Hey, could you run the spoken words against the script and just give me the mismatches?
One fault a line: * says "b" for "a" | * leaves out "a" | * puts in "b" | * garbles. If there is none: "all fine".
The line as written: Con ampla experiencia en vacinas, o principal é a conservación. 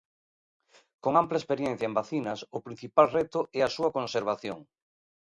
* puts in "reto"
* puts in "súa"